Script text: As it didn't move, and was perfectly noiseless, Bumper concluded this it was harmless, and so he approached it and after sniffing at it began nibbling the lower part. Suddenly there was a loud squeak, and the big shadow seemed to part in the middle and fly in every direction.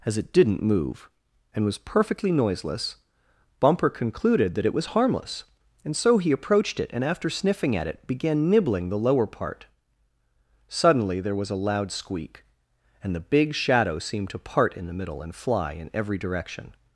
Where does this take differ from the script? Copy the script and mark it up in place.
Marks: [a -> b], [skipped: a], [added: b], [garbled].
As it didn't move, and was perfectly noiseless, Bumper concluded [this -> that] it was harmless, and so he approached it and after sniffing at it began nibbling the lower part. Suddenly there was a loud squeak, and the big shadow seemed to part in the middle and fly in every direction.